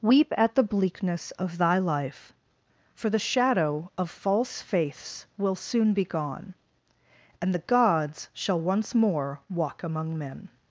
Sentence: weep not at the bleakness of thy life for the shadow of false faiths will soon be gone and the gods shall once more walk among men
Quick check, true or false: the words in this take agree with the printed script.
false